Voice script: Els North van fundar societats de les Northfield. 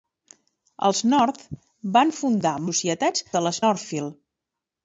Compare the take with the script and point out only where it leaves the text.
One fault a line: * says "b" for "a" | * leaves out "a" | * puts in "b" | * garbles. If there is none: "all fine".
all fine